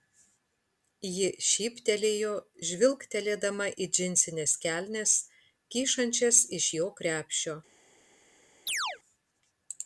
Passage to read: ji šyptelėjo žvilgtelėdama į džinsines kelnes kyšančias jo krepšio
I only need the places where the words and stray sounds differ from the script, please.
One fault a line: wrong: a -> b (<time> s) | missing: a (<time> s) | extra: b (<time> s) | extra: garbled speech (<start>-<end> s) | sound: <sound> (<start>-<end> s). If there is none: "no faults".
extra: iš (6.6 s)
sound: chirp (8.7-9.0 s)